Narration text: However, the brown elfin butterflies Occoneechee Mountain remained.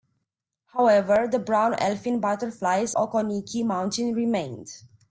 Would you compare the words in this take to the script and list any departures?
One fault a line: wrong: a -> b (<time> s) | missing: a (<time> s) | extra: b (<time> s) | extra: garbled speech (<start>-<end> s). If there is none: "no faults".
no faults